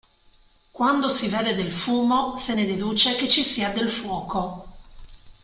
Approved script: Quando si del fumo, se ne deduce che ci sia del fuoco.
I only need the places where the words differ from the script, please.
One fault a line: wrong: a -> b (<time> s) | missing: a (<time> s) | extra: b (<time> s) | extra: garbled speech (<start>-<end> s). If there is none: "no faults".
extra: vede (1.3 s)